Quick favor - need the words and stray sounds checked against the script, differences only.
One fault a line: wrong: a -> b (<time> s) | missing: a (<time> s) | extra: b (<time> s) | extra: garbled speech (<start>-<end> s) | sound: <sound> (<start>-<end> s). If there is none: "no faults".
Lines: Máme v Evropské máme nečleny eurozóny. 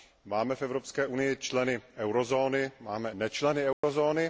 extra: unii členy eurozóny (1.0 s)
sound: dropout (3.7-3.8 s)